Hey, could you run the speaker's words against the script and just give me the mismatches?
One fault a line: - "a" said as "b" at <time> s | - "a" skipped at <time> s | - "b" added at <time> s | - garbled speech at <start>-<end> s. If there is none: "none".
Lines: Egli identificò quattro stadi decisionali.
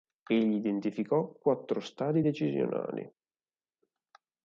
none